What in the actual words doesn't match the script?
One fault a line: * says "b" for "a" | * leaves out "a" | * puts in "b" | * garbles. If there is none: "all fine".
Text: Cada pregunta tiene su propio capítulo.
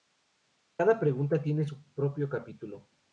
all fine